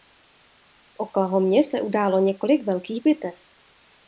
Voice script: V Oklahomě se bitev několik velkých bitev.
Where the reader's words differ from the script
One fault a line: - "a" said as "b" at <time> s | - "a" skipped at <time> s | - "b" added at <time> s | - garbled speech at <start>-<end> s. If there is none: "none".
- "bitev" said as "událo" at 1.8 s